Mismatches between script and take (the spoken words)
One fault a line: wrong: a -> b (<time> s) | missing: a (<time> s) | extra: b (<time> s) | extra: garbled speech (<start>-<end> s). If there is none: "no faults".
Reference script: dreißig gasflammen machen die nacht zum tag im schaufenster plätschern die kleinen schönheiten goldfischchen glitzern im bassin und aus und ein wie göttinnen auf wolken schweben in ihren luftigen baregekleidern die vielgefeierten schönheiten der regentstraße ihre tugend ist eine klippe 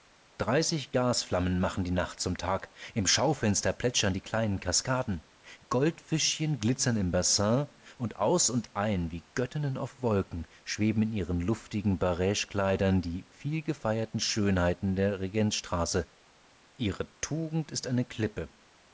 wrong: schönheiten -> kaskaden (4.6 s)